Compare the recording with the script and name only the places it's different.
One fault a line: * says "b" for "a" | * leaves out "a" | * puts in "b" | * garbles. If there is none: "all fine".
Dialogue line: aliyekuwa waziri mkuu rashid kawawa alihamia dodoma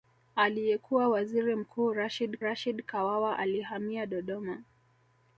* puts in "rashid"